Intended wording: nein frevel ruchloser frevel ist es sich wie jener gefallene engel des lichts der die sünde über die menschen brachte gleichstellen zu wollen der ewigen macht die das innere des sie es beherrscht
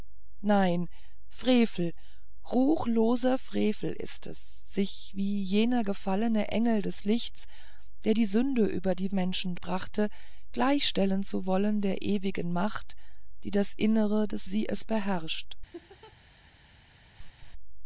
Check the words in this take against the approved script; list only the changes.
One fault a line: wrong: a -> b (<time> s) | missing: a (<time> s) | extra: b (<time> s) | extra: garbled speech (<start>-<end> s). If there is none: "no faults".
no faults